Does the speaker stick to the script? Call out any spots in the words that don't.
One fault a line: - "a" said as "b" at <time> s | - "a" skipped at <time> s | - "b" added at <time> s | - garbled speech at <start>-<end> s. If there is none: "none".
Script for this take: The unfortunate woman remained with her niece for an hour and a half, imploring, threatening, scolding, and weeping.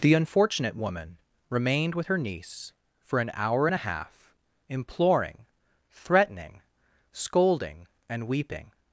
none